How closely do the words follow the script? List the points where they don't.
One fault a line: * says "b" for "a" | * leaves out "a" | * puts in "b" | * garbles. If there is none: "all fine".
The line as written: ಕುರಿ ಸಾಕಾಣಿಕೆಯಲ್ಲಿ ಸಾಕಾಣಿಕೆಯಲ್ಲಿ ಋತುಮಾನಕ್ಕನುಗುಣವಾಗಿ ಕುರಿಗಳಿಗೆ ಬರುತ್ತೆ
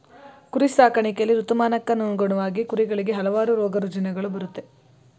* leaves out "ಸಾಕಾಣಿಕೆಯಲ್ಲಿ"
* puts in "ಹಲವಾರು ರೋಗರುಜಿನಗಳು"